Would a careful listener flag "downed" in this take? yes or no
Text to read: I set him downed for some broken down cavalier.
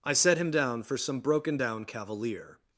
yes